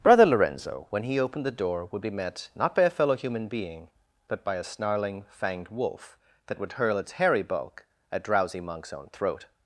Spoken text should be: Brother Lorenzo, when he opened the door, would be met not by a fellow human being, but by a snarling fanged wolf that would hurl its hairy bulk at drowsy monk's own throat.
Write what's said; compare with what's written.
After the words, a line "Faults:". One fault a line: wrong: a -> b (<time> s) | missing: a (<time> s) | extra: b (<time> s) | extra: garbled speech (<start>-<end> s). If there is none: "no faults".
Brother Lorenzo, when he opened the door, would be met not by a fellow human being, but by a snarling fanged wolf that would hurl its hairy bulk at drowsy monk's own throat.
Faults:
no faults